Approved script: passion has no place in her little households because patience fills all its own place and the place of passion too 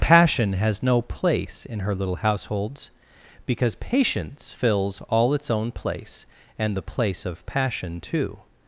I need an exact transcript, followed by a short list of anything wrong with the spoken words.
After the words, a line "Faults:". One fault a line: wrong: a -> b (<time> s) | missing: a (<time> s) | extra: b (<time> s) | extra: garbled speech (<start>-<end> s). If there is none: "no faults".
passion has no place in her little households because patience fills all its own place and the place of passion too
Faults:
no faults